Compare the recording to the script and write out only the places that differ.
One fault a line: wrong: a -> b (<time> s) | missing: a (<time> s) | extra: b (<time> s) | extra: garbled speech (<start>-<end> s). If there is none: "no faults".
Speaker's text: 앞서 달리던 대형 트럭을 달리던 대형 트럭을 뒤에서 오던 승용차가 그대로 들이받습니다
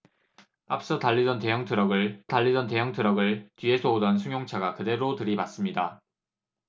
no faults